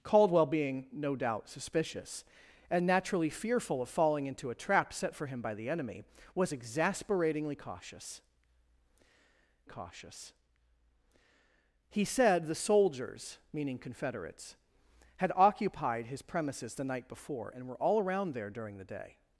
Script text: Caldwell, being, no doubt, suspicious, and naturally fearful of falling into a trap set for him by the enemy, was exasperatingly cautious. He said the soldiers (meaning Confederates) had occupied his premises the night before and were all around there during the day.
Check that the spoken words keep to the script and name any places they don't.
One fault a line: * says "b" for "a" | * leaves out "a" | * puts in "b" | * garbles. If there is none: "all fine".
* puts in "cautious"